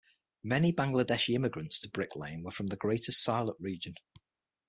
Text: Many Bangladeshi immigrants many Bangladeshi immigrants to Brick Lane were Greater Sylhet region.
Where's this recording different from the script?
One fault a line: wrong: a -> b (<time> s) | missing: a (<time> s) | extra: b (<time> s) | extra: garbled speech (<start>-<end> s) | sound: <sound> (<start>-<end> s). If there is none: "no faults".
missing: many Bangladeshi immigrants (1.8 s)
extra: from the (2.5 s)